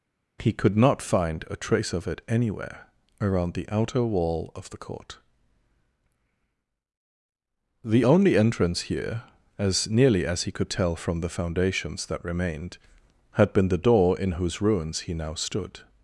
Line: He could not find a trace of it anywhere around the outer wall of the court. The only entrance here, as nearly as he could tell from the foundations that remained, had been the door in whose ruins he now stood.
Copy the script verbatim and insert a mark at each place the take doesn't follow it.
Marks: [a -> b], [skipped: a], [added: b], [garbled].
He could not find a trace of it anywhere around the outer wall of the court. The only entrance here, as nearly as he could tell from the foundations that remained, had been the door in whose ruins he now stood.